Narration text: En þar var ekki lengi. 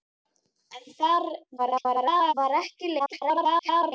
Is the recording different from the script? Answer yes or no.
yes